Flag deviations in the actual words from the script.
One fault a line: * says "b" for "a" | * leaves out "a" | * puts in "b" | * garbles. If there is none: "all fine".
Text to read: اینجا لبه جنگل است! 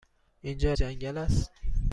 * leaves out "لبه"